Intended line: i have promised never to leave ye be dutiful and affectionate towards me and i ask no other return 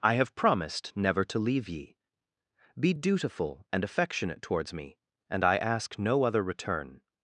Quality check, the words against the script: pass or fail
pass